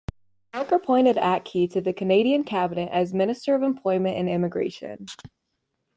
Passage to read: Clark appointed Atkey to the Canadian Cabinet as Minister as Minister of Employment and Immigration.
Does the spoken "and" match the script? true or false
true